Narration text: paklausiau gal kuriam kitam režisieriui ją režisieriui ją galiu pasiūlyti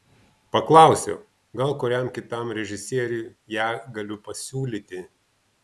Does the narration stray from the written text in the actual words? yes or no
yes